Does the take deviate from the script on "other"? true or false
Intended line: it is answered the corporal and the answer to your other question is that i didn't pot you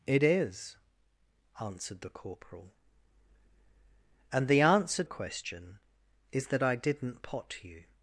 true